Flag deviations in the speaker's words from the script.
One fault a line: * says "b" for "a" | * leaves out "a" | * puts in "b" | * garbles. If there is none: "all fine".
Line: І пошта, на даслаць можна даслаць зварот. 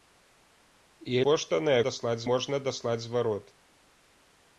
all fine